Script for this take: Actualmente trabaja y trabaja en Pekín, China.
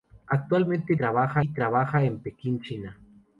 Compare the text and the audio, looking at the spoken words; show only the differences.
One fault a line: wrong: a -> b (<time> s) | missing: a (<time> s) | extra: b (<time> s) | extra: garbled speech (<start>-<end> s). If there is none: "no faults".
no faults